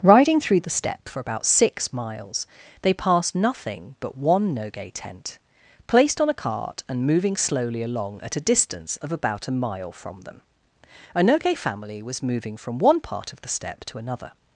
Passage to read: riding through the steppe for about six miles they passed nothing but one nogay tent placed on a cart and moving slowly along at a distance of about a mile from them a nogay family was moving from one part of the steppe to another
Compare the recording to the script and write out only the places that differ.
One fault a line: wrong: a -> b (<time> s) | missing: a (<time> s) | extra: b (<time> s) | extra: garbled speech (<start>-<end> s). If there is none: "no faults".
no faults